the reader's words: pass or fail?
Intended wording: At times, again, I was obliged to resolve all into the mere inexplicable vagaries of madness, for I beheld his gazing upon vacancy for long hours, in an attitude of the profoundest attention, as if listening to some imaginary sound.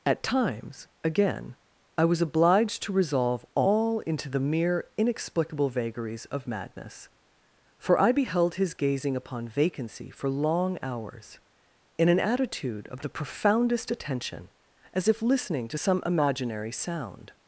pass